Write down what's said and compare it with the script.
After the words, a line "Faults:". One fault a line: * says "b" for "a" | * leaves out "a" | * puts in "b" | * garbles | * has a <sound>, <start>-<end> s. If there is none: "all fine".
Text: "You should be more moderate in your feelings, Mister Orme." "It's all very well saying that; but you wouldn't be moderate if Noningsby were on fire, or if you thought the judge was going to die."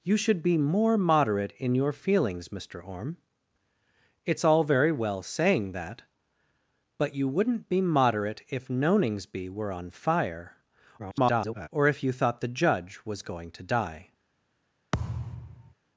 "You should be more moderate in your feelings, Mister Orme." "It's all very well saying that; but you wouldn't be moderate if Noningsby were on fire, [garbled] or if you thought the judge was going to die."
Faults:
* garbles
* has a thud, 14.9-15.7 s